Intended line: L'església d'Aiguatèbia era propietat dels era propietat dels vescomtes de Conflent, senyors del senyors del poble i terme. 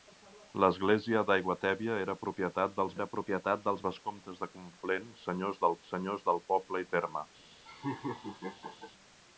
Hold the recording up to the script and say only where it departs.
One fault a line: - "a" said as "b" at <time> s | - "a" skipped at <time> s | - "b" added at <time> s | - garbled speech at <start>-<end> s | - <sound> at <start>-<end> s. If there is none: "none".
- laugh at 7.7-8.9 s